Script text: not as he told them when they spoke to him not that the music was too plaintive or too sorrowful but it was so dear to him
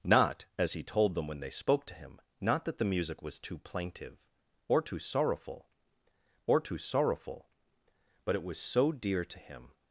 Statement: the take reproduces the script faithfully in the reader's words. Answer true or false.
false